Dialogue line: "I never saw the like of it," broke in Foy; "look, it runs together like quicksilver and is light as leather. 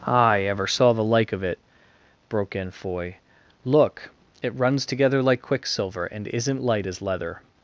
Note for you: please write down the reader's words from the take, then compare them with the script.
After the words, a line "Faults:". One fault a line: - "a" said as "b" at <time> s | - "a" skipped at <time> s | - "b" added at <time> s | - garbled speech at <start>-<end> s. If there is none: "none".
"I ever saw the like of it," broke in Foy; "look, it runs together like quicksilver and isn't light as leather.
Faults:
- "never" said as "ever" at 0.4 s
- "is" said as "isn't" at 6.3 s